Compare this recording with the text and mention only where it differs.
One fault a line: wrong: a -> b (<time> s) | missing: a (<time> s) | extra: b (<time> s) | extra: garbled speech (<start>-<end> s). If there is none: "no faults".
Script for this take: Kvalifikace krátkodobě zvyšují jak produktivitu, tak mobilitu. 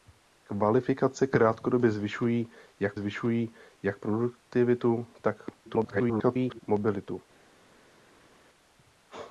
extra: zvyšují jak (2.9 s)
extra: garbled speech (5.7-6.6 s)